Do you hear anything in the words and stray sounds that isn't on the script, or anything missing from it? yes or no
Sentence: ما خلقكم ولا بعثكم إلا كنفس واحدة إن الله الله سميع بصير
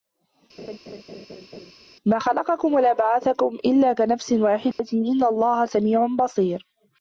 yes